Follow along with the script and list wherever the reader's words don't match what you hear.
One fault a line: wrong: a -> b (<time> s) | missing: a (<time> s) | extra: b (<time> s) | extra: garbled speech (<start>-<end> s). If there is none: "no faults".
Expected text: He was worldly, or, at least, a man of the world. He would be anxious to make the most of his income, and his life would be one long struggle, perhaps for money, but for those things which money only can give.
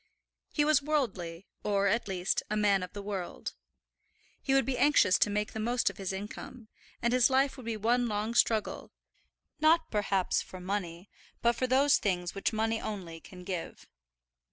extra: not (9.6 s)